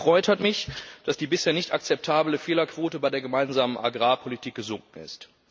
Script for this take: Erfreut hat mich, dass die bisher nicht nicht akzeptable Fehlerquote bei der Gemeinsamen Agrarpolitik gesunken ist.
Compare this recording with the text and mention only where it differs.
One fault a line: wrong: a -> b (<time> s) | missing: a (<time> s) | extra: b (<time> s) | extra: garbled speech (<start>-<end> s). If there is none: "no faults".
missing: nicht (1.7 s)